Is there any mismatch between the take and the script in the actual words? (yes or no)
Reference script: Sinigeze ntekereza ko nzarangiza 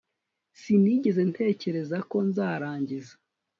no